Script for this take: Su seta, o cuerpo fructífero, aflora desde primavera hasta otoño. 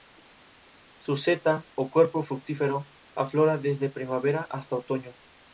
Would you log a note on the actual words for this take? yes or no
no